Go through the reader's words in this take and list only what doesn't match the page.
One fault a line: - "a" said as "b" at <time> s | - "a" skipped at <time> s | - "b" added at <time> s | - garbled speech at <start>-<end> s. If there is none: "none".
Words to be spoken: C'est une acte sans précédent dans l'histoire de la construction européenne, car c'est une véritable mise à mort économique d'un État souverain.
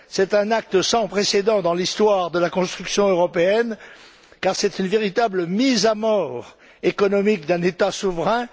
- "une" said as "un" at 0.3 s